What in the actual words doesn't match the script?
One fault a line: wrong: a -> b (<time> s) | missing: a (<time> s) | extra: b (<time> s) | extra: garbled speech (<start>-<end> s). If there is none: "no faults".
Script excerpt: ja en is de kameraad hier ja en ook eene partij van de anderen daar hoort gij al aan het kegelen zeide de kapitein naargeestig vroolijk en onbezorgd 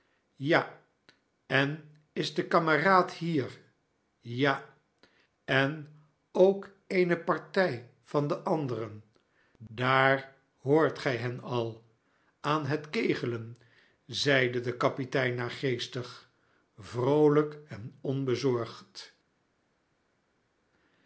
extra: hen (11.2 s)